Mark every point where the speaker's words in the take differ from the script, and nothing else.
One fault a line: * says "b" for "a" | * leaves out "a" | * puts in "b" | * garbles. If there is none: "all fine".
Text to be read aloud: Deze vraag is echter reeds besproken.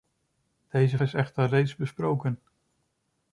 * leaves out "vraag"